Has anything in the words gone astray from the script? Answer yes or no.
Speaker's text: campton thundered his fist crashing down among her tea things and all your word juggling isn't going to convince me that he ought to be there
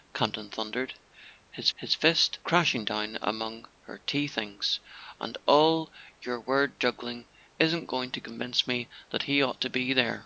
yes